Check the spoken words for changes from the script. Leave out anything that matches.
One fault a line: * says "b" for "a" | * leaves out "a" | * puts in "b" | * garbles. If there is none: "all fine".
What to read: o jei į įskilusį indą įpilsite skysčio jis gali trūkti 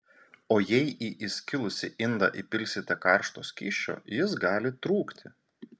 * puts in "karšto"